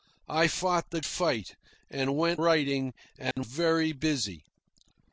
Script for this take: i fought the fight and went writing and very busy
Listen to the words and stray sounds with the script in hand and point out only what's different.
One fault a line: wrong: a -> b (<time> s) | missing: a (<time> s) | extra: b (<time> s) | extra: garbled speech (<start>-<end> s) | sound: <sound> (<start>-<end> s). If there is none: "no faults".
sound: dropout (3.3-3.4 s)